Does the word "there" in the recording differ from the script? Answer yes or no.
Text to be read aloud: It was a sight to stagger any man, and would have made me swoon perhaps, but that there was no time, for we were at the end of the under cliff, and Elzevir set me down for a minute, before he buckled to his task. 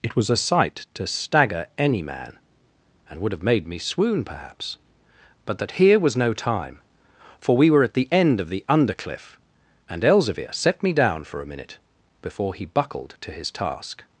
yes